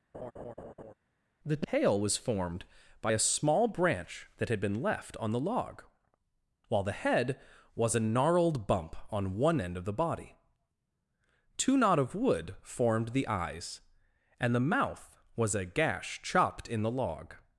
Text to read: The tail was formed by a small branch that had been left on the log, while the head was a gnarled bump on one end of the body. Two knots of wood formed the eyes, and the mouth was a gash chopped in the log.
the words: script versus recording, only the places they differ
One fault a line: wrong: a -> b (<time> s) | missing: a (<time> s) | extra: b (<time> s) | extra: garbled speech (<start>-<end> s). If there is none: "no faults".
wrong: knots -> knot (11.8 s)